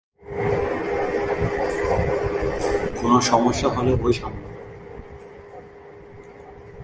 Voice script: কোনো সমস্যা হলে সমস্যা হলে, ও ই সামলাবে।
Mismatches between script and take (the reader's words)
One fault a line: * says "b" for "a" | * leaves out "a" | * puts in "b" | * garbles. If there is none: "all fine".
* leaves out "সমস্যা হলে"